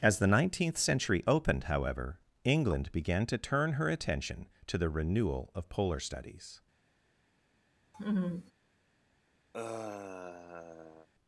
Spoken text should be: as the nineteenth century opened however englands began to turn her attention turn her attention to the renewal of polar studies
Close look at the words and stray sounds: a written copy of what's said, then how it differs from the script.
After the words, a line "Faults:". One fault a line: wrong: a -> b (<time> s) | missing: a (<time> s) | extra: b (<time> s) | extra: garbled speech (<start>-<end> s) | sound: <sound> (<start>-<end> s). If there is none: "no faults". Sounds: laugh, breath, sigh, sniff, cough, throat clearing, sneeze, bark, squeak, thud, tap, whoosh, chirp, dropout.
as the nineteenth century opened however england began to turn her attention to the renewal of polar studies
Faults:
wrong: englands -> england (2.4 s)
missing: turn her attention (4.5 s)
sound: laugh (7.9-8.5 s)
sound: sigh (9.5-11.1 s)